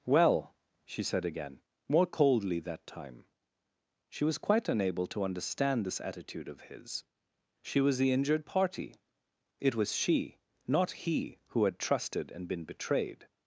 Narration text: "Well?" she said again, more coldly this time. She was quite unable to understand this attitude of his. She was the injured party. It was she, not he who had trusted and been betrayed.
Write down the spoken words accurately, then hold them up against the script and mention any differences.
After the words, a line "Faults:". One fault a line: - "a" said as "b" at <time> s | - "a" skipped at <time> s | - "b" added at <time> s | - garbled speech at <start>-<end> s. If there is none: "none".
"Well?" she said again, more coldly that time. She was quite unable to understand this attitude of his. She was the injured party. It was she, not he who had trusted and been betrayed.
Faults:
- "this" said as "that" at 2.6 s